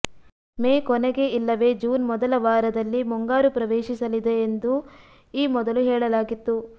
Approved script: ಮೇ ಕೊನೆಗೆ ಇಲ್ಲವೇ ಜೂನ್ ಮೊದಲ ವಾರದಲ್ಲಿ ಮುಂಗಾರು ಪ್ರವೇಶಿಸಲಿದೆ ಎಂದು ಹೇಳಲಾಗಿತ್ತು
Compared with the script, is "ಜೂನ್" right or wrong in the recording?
right